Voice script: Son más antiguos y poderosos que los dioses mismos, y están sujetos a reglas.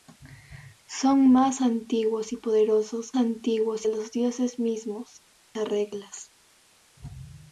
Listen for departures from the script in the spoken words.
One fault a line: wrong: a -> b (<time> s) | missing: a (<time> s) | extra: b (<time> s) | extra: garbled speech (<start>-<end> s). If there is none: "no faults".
wrong: que -> antiguos (3.2 s)
missing: y están sujetos (5.2 s)